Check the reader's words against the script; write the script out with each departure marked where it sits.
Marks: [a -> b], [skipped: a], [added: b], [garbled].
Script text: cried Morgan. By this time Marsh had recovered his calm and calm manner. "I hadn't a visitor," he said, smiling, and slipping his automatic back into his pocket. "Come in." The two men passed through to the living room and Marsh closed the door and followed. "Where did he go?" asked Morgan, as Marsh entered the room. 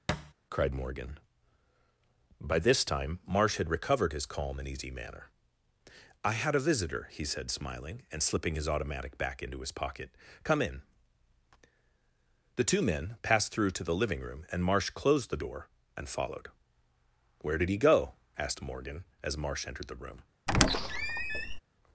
cried Morgan. By this time Marsh had recovered his calm and [calm -> easy] manner. "I [hadn't -> had] a visitor," he said, smiling, and slipping his automatic back into his pocket. "Come in." The two men passed through to the living room and Marsh closed the door and followed. "Where did he go?" asked Morgan, as Marsh entered the room.